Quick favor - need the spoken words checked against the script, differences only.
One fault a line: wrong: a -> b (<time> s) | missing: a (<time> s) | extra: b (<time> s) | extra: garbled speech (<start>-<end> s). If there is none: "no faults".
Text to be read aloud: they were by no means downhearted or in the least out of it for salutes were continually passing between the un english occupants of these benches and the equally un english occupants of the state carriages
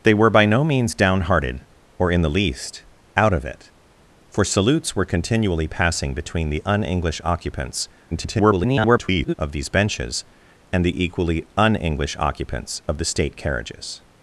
extra: garbled speech (8.1-9.3 s)